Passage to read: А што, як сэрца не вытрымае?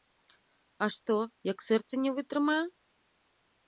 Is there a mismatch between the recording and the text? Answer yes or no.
no